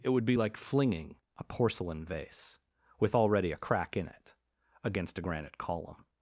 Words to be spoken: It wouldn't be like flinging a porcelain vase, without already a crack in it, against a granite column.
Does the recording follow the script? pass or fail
fail